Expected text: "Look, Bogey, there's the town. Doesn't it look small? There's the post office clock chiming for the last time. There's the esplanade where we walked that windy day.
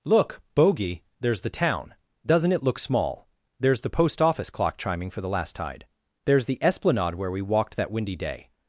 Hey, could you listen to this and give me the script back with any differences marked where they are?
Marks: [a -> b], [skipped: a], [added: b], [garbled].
"Look, Bogey, there's the town. Doesn't it look small? There's the post office clock chiming for the last [time. -> tide] There's the esplanade where we walked that windy day.